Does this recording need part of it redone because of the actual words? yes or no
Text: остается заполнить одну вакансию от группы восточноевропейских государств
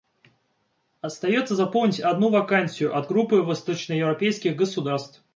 no